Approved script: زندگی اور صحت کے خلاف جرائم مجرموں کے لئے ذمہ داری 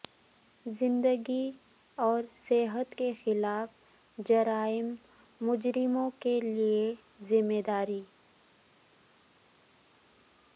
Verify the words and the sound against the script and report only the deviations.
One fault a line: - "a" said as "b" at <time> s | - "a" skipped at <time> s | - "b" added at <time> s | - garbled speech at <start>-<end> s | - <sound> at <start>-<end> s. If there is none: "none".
none